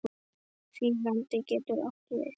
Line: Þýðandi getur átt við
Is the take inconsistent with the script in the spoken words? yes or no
no